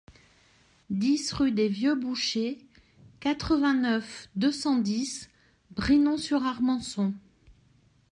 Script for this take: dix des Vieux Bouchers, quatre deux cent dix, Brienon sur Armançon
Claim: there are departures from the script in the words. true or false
true